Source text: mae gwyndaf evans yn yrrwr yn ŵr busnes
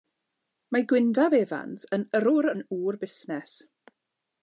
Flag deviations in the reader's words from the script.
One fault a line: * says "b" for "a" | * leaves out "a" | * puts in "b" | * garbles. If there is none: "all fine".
all fine